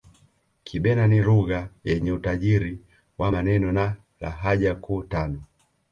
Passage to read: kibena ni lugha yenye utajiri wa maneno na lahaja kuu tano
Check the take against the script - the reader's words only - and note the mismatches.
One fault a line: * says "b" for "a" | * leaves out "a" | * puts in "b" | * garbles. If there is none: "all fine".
all fine